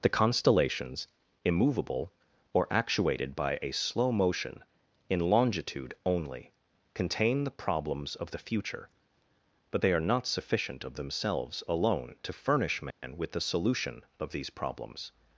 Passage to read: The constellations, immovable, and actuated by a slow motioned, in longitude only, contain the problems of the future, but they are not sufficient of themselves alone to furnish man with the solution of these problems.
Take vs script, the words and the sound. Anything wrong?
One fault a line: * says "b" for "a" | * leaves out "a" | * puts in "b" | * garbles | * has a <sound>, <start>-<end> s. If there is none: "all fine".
* says "or" for "and"
* says "motion" for "motioned"
* has a dropout, 12.9-13.0 s